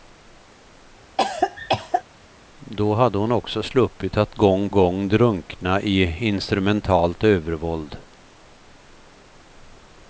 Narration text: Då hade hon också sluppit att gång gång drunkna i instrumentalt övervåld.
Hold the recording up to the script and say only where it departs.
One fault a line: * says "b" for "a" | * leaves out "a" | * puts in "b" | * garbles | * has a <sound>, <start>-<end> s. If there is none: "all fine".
* has a cough, 1.2-2.0 s